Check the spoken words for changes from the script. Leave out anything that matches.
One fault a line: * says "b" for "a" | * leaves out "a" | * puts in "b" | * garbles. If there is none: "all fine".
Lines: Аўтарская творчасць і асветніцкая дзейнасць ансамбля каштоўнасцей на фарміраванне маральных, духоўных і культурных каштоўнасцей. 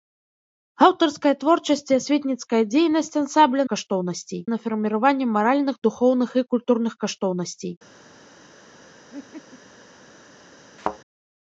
all fine